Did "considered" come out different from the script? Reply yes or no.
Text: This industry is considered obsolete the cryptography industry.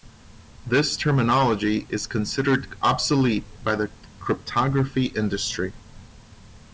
no